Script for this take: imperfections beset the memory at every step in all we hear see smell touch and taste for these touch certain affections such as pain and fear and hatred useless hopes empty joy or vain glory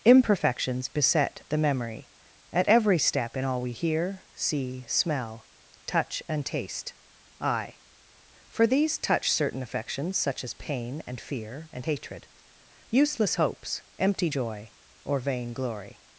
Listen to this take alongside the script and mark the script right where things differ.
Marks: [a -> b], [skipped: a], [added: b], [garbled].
imperfections beset the memory at every step in all we hear see smell touch and taste [added: i] for these touch certain affections such as pain and fear and hatred useless hopes empty joy or vain glory